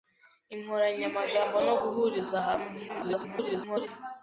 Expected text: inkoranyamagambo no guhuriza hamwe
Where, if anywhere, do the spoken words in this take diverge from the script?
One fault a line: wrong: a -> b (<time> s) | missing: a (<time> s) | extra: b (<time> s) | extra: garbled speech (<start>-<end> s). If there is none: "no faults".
extra: garbled speech (2.9-3.9 s)